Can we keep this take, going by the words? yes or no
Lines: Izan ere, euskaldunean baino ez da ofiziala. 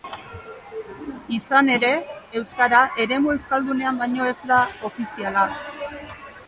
no